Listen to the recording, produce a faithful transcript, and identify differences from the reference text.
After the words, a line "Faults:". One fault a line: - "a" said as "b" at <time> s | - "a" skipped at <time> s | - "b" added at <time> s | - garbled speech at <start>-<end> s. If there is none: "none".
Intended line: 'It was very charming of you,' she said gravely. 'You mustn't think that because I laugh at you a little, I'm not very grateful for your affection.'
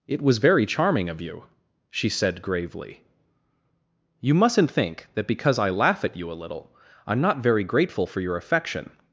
'It was very charming of you,' she said gravely. 'You mustn't think that because I laugh at you a little, I'm not very grateful for your affection.'
Faults:
none